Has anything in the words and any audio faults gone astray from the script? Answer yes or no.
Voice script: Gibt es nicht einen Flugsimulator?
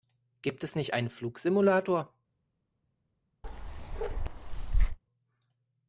yes